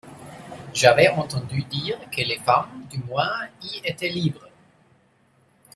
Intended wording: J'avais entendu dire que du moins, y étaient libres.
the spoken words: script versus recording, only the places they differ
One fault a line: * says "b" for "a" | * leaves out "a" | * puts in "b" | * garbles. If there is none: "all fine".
* puts in "les femmes"